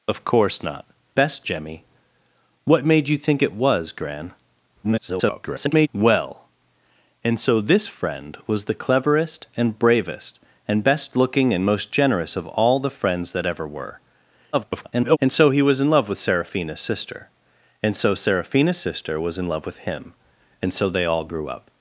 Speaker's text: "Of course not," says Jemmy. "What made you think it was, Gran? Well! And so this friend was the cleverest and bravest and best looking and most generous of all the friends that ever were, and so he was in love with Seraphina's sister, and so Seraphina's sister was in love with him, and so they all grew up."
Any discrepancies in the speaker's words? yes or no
yes